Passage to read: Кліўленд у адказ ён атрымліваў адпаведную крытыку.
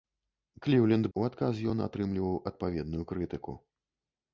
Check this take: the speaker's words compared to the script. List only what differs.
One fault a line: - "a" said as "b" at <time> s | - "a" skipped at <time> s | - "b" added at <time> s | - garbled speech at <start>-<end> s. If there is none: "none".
none